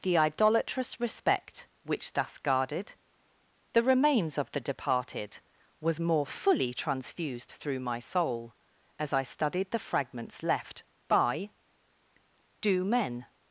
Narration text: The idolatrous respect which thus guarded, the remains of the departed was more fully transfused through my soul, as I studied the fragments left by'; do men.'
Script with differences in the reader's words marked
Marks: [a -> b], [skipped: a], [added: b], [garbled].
The idolatrous respect which thus guarded, the remains of the departed was more fully transfused through my soul, as I studied the fragments left by'; do men.'